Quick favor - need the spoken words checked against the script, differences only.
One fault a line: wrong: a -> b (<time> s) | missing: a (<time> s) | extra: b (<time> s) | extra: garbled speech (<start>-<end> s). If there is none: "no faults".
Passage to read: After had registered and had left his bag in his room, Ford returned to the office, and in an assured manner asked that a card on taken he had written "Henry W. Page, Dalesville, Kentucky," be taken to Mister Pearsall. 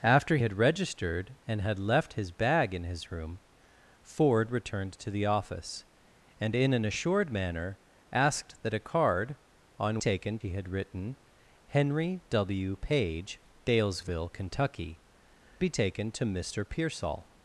no faults